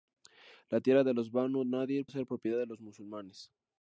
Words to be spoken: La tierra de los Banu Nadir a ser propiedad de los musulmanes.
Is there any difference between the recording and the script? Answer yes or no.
no